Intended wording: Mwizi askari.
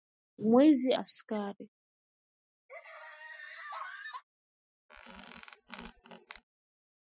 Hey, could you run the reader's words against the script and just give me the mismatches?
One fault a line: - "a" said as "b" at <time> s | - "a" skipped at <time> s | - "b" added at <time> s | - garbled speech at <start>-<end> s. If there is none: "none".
none